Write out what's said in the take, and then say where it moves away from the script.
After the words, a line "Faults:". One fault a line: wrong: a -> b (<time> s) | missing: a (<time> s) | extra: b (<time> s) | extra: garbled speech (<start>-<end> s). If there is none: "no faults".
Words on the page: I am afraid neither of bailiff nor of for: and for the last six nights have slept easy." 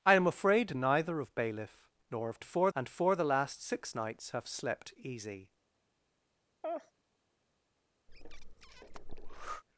I am afraid neither of bailiff nor of for: and for the last six nights have slept easy."
Faults:
no faults